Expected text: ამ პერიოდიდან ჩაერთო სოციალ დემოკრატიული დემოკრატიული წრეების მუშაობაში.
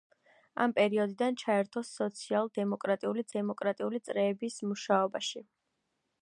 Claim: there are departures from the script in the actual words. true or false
false